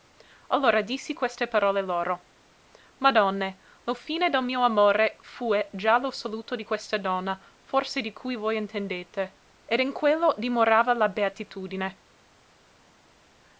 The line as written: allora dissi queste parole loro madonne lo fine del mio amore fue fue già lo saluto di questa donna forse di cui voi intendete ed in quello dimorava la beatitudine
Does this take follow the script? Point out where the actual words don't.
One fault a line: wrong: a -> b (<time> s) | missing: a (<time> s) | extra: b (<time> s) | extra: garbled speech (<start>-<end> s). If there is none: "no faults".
missing: fue (5.7 s)